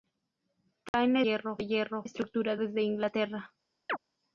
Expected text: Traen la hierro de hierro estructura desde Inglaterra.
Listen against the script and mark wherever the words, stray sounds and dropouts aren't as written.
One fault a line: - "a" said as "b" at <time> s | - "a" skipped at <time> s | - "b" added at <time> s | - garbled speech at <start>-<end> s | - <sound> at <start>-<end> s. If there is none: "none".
- dropout at 0.9-0.9 s
- chirp at 3.9-4.0 s